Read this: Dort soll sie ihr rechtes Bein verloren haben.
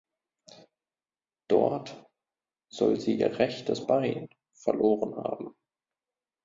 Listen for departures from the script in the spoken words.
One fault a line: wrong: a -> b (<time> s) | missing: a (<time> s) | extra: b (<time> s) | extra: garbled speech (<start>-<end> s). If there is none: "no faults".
no faults